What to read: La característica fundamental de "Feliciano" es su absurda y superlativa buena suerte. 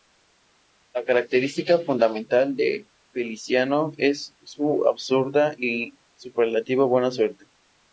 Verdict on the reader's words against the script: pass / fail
pass